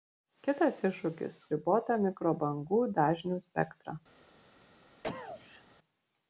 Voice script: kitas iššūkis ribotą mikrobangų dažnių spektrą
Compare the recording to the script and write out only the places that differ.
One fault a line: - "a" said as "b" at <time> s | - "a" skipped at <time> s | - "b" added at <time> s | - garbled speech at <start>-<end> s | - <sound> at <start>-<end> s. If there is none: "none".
- cough at 5.0-5.6 s